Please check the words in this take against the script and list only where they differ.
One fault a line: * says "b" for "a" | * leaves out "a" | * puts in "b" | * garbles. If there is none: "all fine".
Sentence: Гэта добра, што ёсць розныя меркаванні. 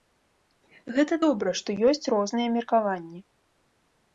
all fine